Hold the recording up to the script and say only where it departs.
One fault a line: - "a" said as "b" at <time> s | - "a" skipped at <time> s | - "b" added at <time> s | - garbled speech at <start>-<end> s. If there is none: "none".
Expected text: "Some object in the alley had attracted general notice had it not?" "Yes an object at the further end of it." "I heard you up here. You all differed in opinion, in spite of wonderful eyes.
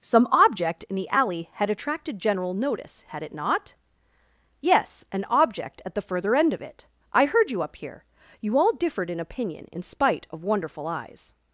none